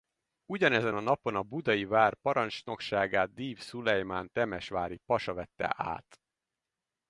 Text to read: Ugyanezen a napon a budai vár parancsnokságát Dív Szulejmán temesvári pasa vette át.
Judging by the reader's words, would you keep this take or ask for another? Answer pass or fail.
pass